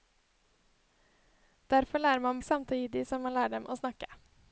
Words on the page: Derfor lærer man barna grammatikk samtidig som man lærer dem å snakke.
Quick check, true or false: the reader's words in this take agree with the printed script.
false